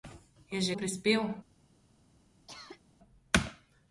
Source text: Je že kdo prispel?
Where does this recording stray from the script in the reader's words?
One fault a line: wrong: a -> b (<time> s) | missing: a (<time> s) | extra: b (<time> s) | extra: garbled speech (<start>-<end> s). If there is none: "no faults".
missing: kdo (0.8 s)